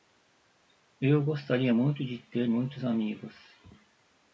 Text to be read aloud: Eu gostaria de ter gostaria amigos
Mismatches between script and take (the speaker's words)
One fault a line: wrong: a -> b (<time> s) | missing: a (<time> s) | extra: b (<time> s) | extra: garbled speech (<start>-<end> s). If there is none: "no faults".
extra: muito (1.7 s)
wrong: gostaria -> muitos (2.4 s)